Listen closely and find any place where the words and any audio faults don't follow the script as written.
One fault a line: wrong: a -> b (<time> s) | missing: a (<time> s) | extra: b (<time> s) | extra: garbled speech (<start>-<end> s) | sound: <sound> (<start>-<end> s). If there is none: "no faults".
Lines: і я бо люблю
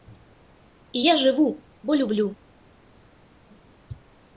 extra: жыву (1.2 s)